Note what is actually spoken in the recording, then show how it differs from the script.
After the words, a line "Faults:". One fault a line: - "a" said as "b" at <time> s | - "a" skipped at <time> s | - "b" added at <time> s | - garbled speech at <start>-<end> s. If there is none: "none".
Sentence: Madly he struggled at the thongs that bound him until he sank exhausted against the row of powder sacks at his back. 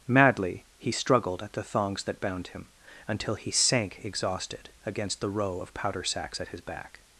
Madly he struggled at the thongs that bound him until he sank exhausted against the row of powder sacks at his back.
Faults:
none